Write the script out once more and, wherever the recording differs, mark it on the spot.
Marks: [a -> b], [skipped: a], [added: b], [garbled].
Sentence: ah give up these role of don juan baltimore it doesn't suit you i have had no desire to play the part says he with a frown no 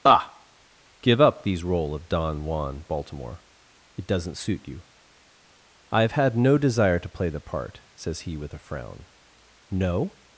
ah give up these role of don juan baltimore it doesn't suit you i have had no desire to play the part says he with a frown no